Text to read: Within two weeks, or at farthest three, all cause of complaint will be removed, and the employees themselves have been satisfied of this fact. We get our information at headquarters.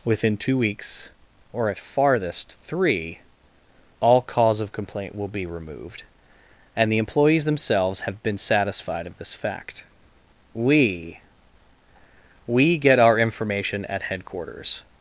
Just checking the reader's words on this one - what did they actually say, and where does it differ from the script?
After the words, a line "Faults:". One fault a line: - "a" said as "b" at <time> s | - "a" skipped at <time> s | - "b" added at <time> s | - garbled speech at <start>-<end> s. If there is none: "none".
Within two weeks, or at farthest three, all cause of complaint will be removed, and the employees themselves have been satisfied of this fact. We We get our information at headquarters.
Faults:
- "We" added at 12.4 s